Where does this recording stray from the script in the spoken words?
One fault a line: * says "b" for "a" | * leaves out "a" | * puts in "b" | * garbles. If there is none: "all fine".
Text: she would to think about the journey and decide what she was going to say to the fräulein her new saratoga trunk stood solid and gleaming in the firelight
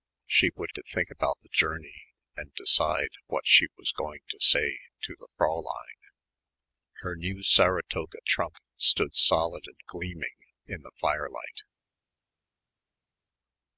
all fine